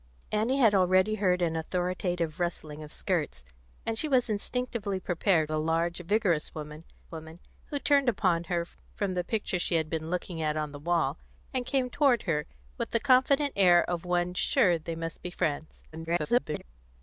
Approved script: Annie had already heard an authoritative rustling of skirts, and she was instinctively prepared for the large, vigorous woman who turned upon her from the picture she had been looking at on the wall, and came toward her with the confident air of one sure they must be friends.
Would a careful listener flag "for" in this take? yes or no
yes